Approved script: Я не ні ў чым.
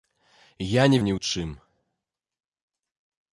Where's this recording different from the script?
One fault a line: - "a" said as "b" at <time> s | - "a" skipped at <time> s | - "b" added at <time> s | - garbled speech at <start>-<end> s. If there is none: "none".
none